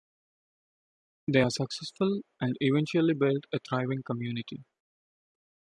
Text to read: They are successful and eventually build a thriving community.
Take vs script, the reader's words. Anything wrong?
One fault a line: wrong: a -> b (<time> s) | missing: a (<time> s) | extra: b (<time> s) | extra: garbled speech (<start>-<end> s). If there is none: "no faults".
no faults